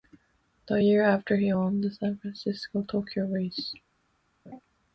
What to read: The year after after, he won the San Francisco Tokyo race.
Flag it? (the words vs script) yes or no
yes